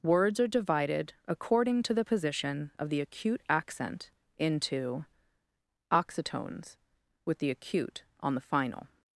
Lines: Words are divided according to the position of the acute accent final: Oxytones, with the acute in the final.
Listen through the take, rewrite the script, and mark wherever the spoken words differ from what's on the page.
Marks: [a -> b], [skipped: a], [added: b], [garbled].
Words are divided according to the position of the acute accent [final: -> into] Oxytones, with the acute [in -> on] the final.